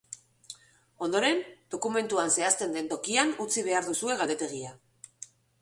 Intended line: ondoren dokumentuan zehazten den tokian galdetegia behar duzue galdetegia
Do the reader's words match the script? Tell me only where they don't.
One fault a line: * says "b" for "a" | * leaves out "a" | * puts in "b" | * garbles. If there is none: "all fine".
* says "utzi" for "galdetegia"